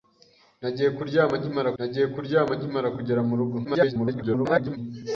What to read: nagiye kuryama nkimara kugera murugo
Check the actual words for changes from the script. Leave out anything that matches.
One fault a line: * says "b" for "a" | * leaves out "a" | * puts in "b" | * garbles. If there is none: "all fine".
* puts in "nagiye kuryama nkimara"
* garbles